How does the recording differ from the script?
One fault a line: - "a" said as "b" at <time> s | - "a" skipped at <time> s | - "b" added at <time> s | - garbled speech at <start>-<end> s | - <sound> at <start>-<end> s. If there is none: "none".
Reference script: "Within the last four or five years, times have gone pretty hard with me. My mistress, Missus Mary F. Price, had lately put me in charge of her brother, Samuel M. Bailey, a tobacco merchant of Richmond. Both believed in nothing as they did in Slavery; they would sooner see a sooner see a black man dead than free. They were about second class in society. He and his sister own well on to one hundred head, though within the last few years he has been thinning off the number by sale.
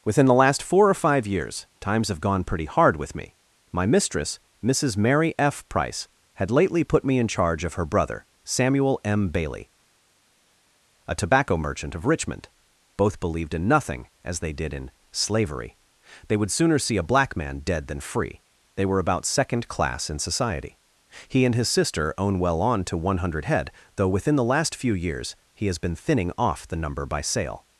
- "sooner see a" skipped at 17.1 s